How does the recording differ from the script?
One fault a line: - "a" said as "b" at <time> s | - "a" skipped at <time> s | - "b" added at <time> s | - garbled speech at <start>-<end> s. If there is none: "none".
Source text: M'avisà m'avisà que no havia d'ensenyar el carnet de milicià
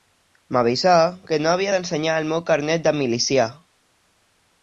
- "m'avisà" skipped at 0.9 s
- "meu" added at 2.3 s